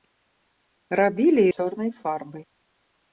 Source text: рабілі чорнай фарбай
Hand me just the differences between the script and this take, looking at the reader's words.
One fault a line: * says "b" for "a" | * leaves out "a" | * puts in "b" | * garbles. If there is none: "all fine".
all fine